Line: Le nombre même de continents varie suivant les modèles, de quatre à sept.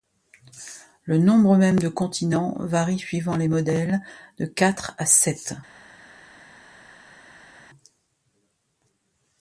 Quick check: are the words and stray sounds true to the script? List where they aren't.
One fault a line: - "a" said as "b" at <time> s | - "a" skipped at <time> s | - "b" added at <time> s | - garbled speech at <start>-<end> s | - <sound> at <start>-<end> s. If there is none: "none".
none